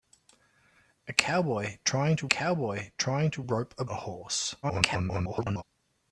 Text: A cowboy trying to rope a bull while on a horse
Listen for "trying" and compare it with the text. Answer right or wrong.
right